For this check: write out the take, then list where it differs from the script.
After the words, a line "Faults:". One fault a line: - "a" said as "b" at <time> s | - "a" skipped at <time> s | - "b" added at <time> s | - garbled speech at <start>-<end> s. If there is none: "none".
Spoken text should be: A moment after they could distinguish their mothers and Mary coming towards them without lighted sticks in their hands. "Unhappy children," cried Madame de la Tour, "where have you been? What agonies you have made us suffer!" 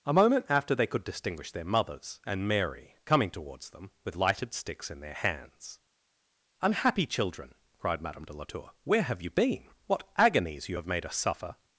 A moment after they could distinguish their mothers and Mary coming towards them with lighted sticks in their hands. "Unhappy children," cried Madame de la Tour, "where have you been? What agonies you have made us suffer!"
Faults:
- "without" said as "with" at 4.0 s